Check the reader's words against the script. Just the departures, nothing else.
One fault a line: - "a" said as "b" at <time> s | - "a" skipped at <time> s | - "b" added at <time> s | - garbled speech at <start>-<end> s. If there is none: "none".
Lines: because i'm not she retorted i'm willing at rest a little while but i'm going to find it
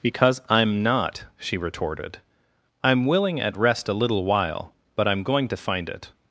none